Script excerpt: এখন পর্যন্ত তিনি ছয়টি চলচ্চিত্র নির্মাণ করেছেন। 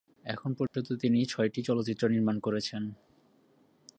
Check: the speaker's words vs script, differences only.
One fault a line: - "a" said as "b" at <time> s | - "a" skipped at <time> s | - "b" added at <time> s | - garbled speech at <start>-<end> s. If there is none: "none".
none